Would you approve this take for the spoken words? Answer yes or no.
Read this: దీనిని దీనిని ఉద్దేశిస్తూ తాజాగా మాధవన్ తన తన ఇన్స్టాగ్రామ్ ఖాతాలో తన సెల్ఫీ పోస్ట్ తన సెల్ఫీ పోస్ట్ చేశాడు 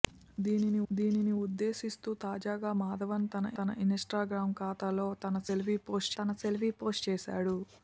yes